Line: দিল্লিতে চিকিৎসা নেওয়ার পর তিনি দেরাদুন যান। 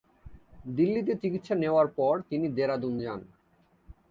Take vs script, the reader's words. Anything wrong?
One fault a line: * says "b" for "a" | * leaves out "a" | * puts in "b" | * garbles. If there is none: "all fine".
all fine